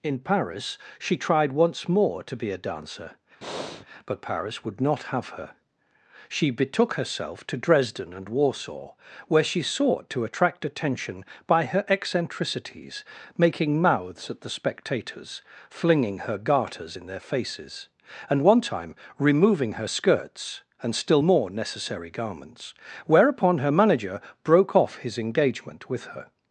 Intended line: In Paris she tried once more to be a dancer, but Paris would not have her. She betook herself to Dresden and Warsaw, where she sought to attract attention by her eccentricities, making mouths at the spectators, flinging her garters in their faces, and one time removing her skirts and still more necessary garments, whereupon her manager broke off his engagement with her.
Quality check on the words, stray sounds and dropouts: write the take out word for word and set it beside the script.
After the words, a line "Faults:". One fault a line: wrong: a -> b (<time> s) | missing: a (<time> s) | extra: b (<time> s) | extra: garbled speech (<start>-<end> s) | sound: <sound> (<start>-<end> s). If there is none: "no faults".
In Paris she tried once more to be a dancer, but Paris would not have her. She betook herself to Dresden and Warsaw, where she sought to attract attention by her eccentricities, making mouths at the spectators, flinging her garters in their faces, and one time removing her skirts and still more necessary garments, whereupon her manager broke off his engagement with her.
Faults:
sound: breath (3.4-3.9 s)